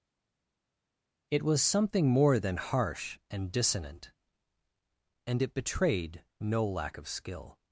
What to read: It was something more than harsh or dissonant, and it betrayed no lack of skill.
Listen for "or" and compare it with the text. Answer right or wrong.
wrong